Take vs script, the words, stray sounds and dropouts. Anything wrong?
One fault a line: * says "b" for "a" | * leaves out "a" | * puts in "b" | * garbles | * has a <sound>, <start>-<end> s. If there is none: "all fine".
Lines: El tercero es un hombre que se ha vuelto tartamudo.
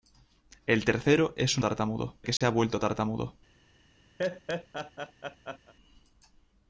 * says "tartamudo" for "hombre"
* has a dropout, 2.4-2.4 s
* has a laugh, 4.2-5.7 s